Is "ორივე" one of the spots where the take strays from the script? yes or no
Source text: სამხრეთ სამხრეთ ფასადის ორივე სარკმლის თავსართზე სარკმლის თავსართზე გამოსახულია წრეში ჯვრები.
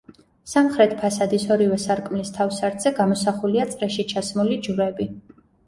no